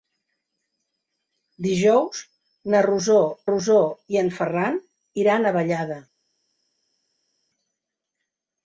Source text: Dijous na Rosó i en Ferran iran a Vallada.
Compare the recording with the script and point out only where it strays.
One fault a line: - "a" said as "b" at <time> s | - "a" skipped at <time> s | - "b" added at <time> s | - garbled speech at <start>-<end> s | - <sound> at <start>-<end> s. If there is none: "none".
- "Rosó" added at 3.5 s